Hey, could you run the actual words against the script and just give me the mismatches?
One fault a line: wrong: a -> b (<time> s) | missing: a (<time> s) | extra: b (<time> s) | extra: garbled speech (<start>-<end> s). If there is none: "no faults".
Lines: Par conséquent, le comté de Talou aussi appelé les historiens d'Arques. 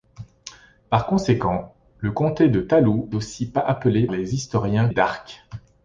no faults